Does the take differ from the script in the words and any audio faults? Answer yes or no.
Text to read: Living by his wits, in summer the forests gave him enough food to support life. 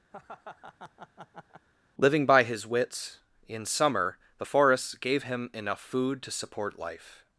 yes